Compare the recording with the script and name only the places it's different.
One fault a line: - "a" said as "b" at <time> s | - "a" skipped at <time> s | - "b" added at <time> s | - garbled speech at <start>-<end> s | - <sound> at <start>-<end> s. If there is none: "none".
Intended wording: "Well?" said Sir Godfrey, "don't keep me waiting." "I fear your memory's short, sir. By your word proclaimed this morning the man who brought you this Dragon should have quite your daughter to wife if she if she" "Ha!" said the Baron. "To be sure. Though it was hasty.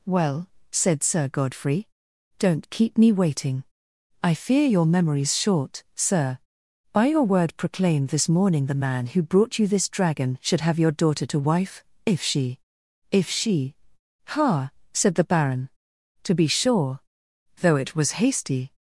- "quite" skipped at 10.8 s